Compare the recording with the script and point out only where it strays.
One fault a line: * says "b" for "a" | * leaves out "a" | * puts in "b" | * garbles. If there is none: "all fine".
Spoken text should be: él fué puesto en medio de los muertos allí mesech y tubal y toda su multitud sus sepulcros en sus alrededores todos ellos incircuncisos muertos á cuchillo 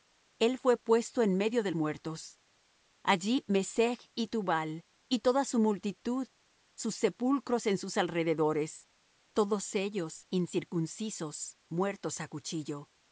* leaves out "los"